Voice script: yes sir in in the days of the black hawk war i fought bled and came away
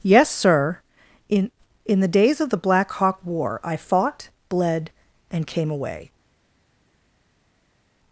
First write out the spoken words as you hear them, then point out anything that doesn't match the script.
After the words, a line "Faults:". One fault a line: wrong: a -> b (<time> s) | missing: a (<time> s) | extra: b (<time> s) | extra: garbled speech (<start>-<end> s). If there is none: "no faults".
yes sir in in the days of the black hawk war i fought bled and came away
Faults:
no faults